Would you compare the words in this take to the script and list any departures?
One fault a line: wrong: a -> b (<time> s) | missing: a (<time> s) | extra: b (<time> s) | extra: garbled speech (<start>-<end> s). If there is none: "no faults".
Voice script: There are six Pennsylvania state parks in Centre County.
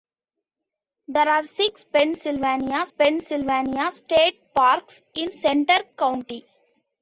extra: Pennsylvania (2.9 s)